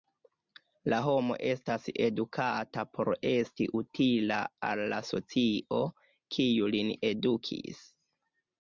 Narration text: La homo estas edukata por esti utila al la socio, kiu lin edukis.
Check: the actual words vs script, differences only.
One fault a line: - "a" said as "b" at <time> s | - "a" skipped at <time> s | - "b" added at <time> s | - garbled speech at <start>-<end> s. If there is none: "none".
none